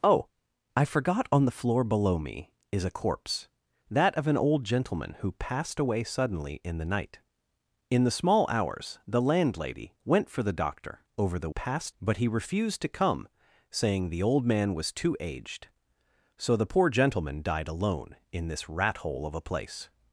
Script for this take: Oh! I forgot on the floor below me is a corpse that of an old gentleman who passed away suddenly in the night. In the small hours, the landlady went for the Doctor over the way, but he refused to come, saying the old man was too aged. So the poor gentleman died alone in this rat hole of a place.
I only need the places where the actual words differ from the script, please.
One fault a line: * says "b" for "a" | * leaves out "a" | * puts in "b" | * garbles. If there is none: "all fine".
* says "passed" for "way"